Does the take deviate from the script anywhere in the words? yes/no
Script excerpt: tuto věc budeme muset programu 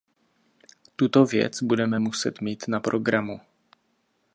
yes